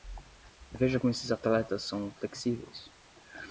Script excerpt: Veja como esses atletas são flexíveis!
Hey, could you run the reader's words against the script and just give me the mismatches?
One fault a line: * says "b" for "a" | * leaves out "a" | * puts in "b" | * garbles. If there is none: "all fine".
all fine